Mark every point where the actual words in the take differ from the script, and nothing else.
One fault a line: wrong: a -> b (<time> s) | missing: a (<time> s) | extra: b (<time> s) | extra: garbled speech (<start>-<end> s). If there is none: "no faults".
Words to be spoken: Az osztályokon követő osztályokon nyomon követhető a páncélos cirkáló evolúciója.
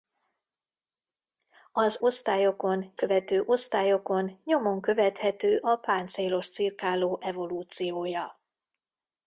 no faults